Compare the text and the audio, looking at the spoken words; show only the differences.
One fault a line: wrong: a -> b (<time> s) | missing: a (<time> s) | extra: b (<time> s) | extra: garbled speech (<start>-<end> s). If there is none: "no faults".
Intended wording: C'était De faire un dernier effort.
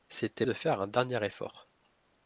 no faults